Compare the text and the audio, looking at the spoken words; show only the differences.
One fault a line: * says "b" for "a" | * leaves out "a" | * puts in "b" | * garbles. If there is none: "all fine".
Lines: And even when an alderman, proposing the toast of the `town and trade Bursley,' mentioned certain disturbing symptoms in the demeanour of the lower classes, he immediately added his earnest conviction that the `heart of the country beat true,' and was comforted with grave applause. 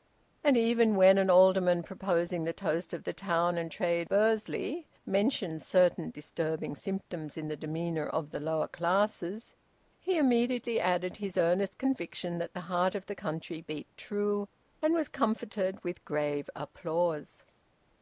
all fine